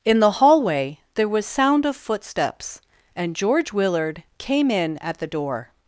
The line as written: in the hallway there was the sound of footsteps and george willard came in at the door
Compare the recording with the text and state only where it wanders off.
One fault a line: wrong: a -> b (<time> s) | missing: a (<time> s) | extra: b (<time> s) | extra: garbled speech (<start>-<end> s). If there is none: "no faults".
missing: the (1.4 s)